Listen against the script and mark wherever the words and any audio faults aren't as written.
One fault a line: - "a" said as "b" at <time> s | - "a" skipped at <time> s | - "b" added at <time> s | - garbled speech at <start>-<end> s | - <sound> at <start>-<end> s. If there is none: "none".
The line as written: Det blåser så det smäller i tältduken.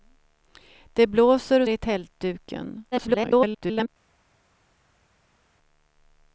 - "så det smäller" skipped at 1.6 s
- garbled speech at 2.9-3.9 s